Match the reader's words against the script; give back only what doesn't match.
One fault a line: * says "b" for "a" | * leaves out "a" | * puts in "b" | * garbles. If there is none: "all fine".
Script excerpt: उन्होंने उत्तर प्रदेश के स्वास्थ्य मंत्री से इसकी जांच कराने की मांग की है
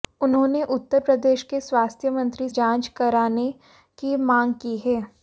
* leaves out "से इसकी"